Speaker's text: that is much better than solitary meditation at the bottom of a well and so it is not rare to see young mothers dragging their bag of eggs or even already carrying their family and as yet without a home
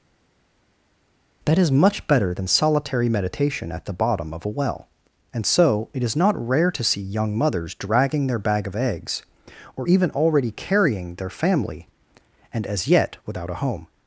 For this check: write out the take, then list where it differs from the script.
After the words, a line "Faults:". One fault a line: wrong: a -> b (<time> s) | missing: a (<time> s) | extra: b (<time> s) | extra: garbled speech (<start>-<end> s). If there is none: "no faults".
that is much better than solitary meditation at the bottom of a well and so it is not rare to see young mothers dragging their bag of eggs or even already carrying their family and as yet without a home
Faults:
no faults